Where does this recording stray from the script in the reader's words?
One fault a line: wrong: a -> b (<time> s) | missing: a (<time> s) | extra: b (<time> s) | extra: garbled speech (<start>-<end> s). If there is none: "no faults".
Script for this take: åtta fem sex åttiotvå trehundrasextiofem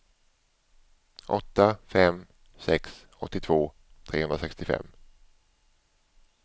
no faults